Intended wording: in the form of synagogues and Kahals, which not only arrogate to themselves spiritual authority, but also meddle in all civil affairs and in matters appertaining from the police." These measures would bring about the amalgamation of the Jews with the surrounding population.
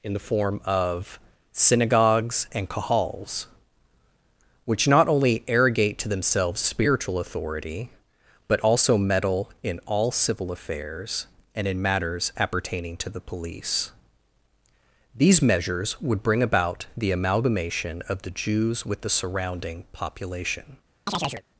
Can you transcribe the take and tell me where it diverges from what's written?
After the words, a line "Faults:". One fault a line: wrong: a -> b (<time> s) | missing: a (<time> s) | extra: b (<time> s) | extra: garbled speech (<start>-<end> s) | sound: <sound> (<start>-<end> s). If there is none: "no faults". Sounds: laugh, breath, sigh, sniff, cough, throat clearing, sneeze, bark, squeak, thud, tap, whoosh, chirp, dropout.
in the form of synagogues and Kahals, which not only arrogate to themselves spiritual authority, but also meddle in all civil affairs and in matters appertaining to the police." These measures would bring about the amalgamation of the Jews with the surrounding population.
Faults:
wrong: from -> to (13.0 s)
sound: chirp (21.1-21.4 s)